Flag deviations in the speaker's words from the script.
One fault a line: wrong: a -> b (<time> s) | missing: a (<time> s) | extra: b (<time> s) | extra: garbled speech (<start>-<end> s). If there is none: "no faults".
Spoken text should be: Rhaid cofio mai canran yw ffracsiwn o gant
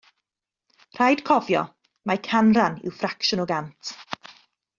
no faults